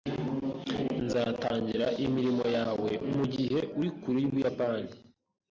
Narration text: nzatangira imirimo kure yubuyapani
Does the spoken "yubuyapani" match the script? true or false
true